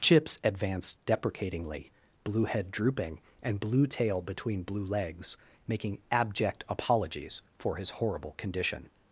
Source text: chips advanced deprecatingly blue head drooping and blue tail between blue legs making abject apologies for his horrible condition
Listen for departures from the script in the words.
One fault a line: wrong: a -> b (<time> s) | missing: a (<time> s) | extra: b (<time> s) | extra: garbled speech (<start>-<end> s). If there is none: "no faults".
no faults